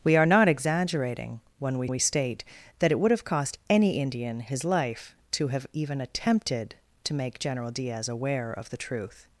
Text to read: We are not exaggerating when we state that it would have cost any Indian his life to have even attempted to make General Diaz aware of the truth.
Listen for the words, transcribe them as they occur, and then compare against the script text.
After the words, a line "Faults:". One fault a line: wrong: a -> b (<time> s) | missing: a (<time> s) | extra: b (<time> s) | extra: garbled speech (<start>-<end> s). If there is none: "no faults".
We are not exaggerating when we we state that it would have cost any Indian his life to have even attempted to make General Diaz aware of the truth.
Faults:
extra: we (1.9 s)